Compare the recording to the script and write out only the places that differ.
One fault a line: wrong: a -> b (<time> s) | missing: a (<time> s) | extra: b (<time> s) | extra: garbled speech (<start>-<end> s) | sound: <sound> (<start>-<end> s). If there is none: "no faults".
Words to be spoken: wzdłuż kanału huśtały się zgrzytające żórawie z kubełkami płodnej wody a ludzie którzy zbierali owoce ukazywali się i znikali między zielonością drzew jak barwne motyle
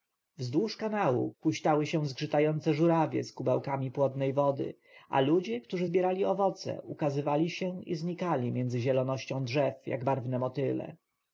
no faults